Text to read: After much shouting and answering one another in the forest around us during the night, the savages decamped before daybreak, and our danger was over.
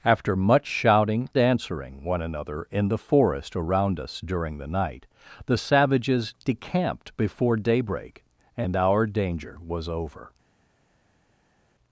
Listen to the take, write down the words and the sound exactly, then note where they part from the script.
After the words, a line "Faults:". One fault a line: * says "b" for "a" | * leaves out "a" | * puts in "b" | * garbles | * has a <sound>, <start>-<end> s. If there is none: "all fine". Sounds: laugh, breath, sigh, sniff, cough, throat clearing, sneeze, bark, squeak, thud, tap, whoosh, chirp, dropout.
After much shouting answering one another in the forest around us during the night, the savages decamped before daybreak, and our danger was over.
Faults:
* leaves out "and"